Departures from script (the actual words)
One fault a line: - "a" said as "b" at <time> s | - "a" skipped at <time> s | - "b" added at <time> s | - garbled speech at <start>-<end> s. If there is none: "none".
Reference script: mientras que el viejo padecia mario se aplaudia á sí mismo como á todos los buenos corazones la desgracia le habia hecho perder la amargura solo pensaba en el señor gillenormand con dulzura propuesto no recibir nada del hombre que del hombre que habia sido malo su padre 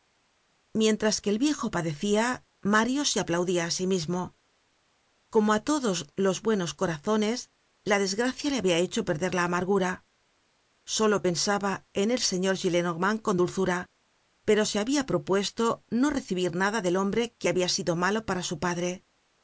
- "pero se habia" added at 14.5 s
- "del hombre que" skipped at 17.5 s
- "para" added at 18.3 s